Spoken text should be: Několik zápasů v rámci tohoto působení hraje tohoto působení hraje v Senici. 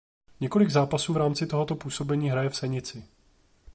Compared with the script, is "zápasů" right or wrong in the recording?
right